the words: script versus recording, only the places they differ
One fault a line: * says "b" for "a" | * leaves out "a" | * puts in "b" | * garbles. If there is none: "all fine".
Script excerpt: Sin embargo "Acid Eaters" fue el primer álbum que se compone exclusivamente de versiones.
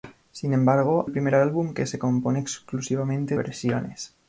* leaves out "Acid Eaters fue"
* leaves out "de"